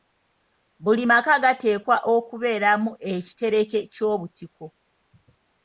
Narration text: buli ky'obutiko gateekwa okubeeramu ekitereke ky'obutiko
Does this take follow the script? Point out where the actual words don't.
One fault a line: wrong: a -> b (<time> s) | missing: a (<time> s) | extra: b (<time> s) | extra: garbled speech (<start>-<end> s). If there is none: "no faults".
wrong: ky'obutiko -> maka (1.1 s)